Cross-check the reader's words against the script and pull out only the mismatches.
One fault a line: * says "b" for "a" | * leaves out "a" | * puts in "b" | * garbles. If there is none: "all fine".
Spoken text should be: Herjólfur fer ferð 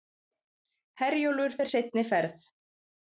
* puts in "seinni"